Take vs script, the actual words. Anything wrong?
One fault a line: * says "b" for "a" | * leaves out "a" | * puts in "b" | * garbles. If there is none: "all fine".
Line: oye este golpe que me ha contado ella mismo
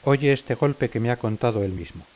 * says "él" for "ella"